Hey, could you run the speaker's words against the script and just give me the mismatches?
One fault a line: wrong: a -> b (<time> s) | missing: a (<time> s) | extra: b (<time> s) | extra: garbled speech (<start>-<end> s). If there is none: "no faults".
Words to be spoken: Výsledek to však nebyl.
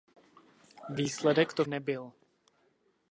missing: však (1.6 s)